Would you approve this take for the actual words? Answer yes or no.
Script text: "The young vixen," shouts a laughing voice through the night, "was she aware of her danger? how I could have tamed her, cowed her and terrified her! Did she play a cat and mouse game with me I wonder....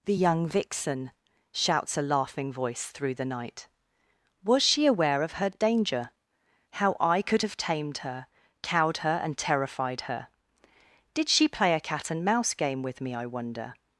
yes